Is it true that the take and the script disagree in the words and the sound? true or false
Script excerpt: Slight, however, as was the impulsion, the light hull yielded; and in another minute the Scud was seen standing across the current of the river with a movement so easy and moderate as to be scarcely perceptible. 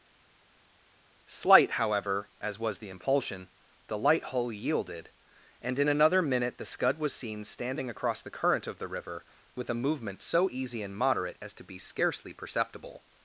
false